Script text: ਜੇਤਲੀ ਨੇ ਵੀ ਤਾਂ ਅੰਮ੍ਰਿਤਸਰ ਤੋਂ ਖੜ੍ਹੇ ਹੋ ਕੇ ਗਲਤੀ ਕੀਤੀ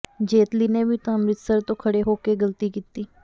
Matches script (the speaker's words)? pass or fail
pass